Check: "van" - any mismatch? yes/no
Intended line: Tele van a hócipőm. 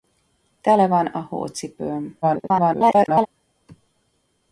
no